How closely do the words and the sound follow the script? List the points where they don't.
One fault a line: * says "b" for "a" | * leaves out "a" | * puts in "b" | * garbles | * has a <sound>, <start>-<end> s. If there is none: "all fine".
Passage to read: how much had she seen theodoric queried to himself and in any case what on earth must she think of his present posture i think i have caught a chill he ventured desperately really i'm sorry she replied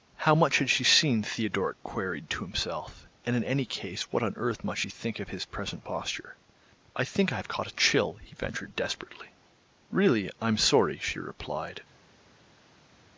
all fine